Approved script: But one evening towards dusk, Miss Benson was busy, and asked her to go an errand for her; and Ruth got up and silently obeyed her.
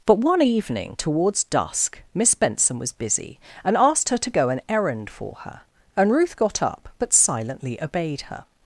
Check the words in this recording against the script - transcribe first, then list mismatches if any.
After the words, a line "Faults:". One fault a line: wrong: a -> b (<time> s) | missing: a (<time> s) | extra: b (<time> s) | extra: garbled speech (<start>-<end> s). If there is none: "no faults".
But one evening towards dusk, Miss Benson was busy, and asked her to go an errand for her; and Ruth got up but silently obeyed her.
Faults:
wrong: and -> but (7.0 s)